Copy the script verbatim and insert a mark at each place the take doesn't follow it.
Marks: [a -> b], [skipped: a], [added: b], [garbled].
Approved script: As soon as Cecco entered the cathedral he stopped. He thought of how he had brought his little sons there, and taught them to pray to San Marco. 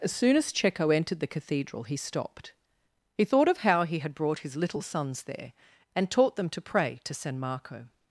As soon as Cecco entered the cathedral he stopped. He thought of how he had brought his little sons there, and taught them to pray to San Marco.